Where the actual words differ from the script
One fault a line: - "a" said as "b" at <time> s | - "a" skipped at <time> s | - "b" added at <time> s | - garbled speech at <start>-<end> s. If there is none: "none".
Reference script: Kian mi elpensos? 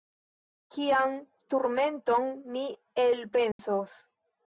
- "turmenton" added at 1.6 s